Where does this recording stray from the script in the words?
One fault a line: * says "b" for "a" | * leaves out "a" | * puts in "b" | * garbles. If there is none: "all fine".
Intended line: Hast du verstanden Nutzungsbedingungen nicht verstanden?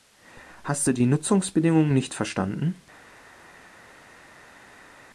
* says "die" for "verstanden"